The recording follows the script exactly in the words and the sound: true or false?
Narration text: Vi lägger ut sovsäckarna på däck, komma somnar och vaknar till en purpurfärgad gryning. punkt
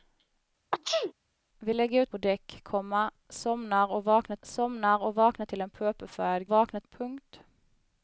false